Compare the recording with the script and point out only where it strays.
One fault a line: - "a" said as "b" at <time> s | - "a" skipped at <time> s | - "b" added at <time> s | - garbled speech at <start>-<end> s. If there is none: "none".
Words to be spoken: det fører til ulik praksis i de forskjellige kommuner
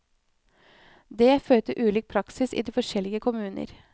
none